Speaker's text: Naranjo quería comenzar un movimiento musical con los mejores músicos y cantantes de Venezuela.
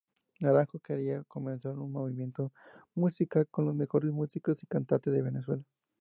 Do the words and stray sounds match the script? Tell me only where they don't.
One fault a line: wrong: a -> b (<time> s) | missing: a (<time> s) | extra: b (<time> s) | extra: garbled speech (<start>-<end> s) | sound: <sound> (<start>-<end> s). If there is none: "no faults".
no faults